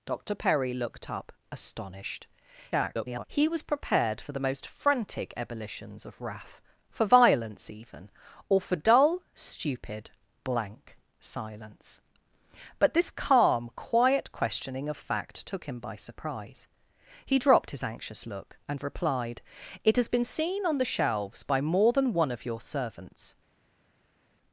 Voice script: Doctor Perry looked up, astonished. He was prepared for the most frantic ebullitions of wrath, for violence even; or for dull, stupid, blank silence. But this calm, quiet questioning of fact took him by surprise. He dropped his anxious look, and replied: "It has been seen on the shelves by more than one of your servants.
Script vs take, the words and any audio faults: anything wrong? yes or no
yes